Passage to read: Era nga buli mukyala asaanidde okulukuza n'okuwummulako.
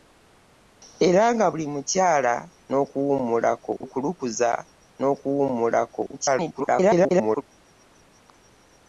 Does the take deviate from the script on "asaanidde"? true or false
true